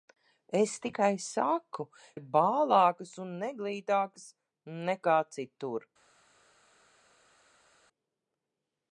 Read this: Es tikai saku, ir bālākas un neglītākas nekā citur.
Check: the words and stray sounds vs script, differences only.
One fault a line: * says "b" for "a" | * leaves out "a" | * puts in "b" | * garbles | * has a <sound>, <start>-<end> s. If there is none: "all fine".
all fine